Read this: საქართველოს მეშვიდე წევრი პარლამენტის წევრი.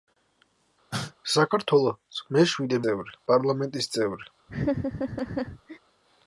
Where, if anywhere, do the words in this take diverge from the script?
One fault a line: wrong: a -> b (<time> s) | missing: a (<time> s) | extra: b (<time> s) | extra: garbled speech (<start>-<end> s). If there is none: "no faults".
no faults